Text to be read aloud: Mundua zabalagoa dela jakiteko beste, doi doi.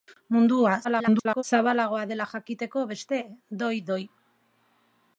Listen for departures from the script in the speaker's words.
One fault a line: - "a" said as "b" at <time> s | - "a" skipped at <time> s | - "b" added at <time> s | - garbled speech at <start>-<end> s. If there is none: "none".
- garbled speech at 0.8-1.4 s